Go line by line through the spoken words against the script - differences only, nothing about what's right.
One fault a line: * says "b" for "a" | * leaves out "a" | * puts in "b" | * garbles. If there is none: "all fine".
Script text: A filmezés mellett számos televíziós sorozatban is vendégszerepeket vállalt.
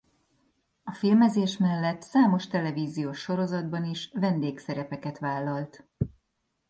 all fine